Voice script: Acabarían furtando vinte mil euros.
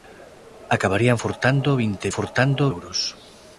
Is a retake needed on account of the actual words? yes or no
yes